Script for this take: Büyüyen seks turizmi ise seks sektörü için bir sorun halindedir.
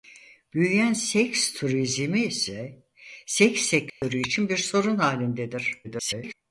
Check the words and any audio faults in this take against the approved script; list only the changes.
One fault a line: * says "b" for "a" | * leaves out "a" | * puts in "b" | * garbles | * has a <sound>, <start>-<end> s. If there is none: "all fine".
* has a dropout, 3.9-4.0 s
* garbles